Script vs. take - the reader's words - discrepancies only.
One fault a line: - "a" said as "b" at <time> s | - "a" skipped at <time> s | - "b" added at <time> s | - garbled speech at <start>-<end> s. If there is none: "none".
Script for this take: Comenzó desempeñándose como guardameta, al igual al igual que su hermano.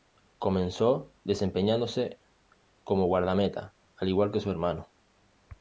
- "al igual" skipped at 4.3 s